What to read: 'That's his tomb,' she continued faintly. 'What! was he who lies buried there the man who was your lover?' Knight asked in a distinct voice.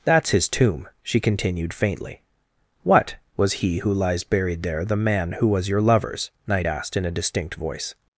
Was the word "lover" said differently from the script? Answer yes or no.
yes